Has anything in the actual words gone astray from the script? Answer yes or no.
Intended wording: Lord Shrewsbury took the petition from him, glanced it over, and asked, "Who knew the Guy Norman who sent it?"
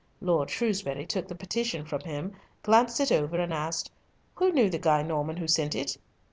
no